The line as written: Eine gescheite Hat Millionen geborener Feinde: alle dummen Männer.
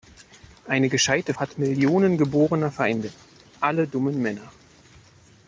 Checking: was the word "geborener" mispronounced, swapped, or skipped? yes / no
no